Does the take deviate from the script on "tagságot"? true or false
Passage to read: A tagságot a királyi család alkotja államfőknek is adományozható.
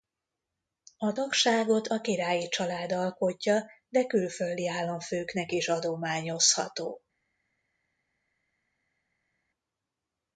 false